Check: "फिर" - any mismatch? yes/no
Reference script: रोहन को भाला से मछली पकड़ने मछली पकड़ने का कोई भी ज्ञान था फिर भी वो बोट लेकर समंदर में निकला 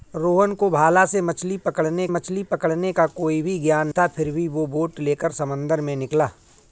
no